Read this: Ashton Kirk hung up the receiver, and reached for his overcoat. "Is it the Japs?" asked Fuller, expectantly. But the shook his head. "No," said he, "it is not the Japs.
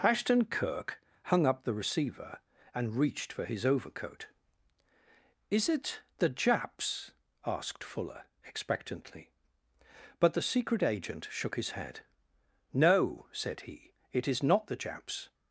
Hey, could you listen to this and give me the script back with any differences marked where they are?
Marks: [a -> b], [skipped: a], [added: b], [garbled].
Ashton Kirk hung up the receiver, and reached for his overcoat. "Is it the Japs?" asked Fuller, expectantly. But the [added: secret agent] shook his head. "No," said he, "it is not the Japs.